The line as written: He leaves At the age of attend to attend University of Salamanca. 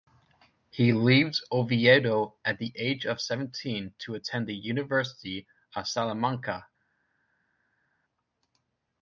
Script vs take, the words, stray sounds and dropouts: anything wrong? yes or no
yes